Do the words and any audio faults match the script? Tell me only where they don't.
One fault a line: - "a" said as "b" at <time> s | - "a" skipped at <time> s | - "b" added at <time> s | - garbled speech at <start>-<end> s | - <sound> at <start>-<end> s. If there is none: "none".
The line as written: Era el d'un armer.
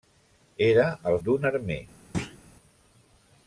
- thud at 2.1-2.4 s